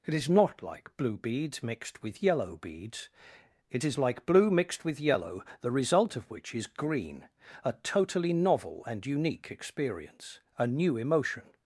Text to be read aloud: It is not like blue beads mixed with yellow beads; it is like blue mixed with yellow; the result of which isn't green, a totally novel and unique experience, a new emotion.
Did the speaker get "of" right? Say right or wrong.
right